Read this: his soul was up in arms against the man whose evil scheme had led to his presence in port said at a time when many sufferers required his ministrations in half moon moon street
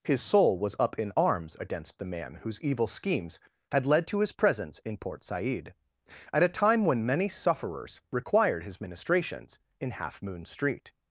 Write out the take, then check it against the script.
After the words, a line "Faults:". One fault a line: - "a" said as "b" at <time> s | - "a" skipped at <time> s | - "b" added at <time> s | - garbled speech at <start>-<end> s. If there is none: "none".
his soul was up in arms against the man whose evil schemes had led to his presence in port said at a time when many sufferers required his ministrations in half moon street
Faults:
- "scheme" said as "schemes" at 2.9 s
- "moon" skipped at 10.4 s